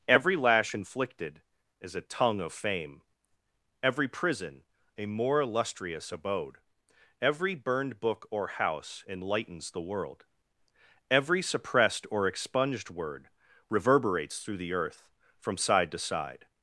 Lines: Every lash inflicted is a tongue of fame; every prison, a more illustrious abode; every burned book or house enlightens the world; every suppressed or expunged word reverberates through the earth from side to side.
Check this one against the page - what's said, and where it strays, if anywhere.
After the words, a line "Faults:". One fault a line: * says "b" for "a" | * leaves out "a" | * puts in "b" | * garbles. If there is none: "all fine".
Every lash inflicted is a tongue of fame; every prison, a more illustrious abode; every burned book or house enlightens the world; every suppressed or expunged word reverberates through the earth from side to side.
Faults:
all fine